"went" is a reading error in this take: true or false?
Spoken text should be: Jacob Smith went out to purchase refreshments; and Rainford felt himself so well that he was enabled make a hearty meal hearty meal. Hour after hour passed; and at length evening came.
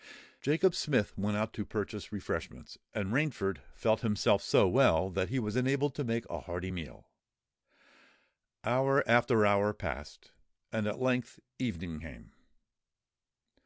false